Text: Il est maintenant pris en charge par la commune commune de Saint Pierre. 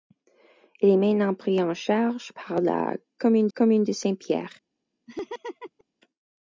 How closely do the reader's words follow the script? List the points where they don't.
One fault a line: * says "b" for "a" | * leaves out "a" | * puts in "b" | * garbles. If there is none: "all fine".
all fine